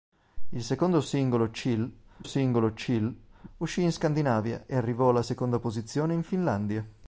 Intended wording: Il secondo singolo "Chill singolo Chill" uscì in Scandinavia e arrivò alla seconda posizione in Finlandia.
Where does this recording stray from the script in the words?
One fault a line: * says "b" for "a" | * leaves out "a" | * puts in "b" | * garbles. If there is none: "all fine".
all fine